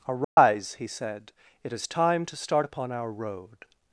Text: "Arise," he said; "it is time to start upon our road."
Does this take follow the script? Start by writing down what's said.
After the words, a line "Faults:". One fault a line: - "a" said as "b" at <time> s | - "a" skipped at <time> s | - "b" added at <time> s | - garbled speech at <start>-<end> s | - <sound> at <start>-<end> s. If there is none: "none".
"Arise," he said; "it is time to start upon our road."
Faults:
- dropout at 0.2-0.4 s